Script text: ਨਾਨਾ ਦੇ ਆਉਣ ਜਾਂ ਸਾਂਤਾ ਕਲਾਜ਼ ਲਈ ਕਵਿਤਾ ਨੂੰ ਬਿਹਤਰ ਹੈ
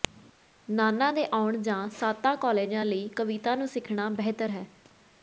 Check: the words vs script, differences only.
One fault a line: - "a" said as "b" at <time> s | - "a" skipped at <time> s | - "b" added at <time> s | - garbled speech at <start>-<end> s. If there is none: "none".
- "ਸਿੱਖਣਾ" added at 3.7 s